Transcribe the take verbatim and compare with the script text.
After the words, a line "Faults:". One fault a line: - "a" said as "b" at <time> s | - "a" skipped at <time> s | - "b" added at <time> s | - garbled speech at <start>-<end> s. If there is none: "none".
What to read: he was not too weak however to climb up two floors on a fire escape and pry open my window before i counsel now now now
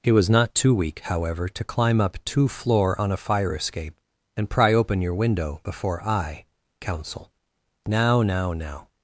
he was not too weak however to climb up two floor on a fire escape and pry open your window before i counsel now now now
Faults:
- "floors" said as "floor" at 2.5 s
- "my" said as "your" at 5.0 s